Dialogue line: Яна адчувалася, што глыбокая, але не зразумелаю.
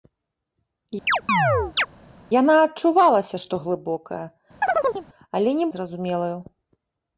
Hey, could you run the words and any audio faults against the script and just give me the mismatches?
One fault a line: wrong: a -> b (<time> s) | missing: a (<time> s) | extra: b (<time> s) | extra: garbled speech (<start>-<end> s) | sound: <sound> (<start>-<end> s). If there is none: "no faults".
sound: chirp (1.1-1.9 s)
sound: chirp (4.6-5.1 s)